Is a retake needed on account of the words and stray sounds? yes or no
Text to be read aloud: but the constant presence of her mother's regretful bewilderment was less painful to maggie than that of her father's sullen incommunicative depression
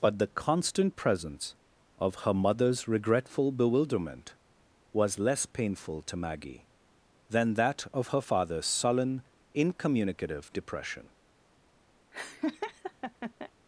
yes